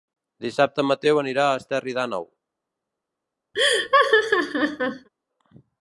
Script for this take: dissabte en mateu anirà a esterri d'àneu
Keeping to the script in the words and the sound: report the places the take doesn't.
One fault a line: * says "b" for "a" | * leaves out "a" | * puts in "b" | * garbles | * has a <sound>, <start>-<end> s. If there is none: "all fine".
* has a laugh, 3.5-5.1 s